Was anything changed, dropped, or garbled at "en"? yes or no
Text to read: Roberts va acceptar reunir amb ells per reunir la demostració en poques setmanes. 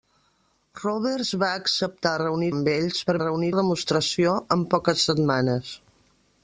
no